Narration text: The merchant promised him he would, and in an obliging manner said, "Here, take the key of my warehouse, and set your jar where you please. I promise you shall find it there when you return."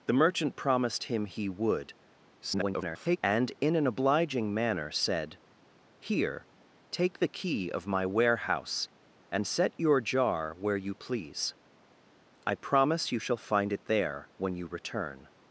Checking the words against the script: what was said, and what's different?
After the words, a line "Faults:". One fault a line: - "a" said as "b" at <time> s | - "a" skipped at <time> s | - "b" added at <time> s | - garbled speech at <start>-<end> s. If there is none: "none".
The merchant promised him he would, [garbled] and in an obliging manner said, "Here, take the key of my warehouse, and set your jar where you please. I promise you shall find it there when you return."
Faults:
- garbled speech at 2.4-3.2 s